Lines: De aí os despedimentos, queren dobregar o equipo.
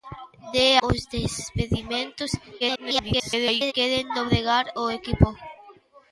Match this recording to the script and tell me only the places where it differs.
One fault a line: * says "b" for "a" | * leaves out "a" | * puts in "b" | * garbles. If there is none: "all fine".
* leaves out "aí"
* garbles